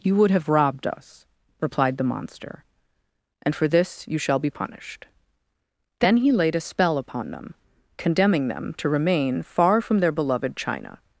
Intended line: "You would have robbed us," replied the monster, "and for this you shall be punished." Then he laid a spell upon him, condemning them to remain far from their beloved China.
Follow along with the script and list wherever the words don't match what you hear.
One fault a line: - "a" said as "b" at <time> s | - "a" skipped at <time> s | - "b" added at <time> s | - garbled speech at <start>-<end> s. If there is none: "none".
- "him" said as "them" at 7.3 s